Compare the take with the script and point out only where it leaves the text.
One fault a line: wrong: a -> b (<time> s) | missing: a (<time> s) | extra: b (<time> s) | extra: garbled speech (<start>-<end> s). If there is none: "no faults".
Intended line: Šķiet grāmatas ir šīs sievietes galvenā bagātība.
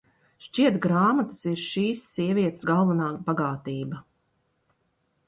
no faults